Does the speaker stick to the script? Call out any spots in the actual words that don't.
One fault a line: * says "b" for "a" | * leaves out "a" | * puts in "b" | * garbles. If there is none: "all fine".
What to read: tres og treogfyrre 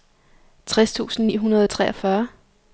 * puts in "tusind ni hundrede"